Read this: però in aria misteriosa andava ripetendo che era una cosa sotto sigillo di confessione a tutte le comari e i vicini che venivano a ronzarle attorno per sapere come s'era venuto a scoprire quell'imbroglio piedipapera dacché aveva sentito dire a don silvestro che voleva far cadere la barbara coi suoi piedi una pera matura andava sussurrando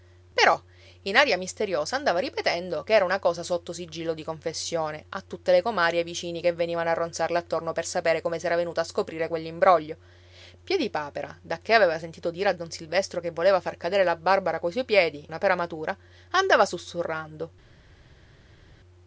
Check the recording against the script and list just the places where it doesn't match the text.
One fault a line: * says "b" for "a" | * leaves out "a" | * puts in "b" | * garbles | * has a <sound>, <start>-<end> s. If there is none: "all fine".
all fine